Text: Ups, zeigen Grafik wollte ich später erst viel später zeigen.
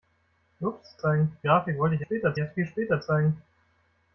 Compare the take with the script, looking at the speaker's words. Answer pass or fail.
pass